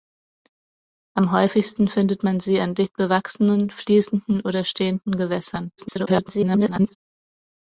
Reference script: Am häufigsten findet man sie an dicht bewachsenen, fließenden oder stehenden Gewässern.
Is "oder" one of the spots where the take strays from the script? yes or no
no